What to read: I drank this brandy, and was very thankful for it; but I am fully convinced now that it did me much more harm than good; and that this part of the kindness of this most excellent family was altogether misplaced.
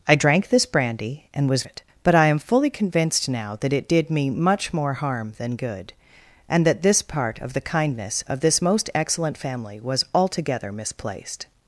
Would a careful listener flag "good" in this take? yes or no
no